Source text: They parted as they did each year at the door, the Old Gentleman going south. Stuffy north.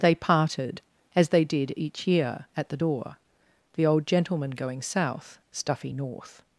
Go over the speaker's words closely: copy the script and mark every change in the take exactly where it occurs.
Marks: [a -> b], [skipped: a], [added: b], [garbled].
They parted as they did each year at the door, the Old Gentleman going south. Stuffy north.